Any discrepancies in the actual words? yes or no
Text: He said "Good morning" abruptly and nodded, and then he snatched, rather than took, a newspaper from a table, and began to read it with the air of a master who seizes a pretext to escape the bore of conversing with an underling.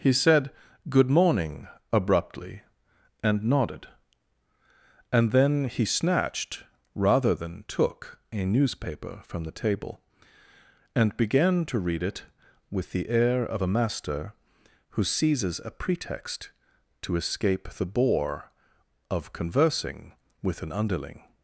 yes